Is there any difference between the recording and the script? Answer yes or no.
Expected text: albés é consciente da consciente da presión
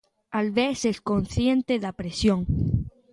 yes